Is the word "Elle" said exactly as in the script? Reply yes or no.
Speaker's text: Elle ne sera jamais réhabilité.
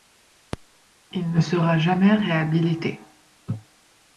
no